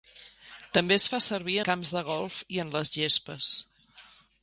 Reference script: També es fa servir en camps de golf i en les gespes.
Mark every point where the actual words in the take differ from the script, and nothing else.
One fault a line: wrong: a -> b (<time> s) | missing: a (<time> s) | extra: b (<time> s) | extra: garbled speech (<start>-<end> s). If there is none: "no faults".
missing: en (1.6 s)